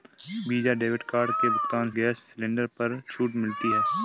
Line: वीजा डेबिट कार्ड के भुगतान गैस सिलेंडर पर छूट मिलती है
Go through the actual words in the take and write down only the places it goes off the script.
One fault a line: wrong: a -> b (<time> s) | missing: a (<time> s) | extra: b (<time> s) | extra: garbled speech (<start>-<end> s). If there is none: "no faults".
no faults